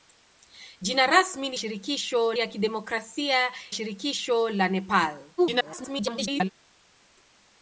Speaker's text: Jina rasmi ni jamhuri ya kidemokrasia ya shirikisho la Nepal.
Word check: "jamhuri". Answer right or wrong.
wrong